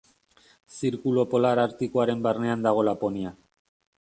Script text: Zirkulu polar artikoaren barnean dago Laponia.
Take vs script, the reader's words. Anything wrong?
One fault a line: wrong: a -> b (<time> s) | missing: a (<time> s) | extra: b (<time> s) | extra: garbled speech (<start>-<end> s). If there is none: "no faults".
no faults